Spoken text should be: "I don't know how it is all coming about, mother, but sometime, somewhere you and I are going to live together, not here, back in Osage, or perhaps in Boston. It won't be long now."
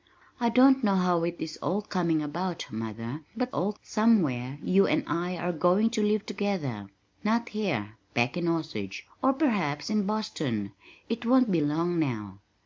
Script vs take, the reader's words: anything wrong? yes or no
yes